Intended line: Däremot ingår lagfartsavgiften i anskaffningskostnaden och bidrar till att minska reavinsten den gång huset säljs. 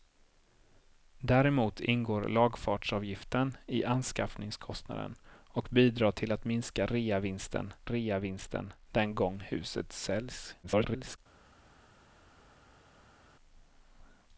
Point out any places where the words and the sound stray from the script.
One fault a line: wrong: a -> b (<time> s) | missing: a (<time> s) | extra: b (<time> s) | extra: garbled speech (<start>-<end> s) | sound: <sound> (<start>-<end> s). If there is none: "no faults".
extra: reavinsten (7.8 s)
extra: garbled speech (10.6-11.2 s)